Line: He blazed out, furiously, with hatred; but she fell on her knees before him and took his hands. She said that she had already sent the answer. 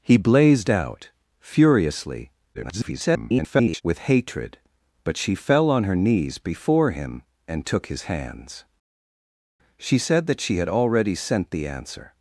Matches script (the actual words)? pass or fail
fail